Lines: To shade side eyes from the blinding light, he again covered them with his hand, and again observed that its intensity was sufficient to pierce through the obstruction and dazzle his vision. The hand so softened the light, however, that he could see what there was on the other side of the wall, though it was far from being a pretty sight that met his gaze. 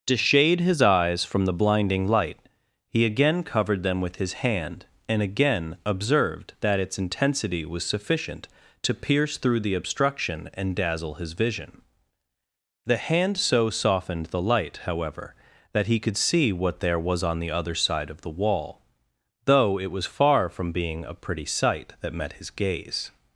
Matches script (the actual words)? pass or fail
fail